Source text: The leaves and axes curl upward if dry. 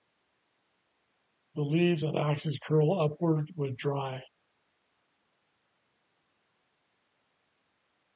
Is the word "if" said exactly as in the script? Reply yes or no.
no